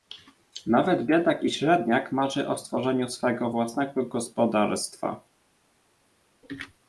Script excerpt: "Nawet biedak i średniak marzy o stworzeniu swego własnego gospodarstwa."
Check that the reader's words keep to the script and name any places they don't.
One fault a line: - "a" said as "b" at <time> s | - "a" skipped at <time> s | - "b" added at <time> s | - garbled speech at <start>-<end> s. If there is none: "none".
none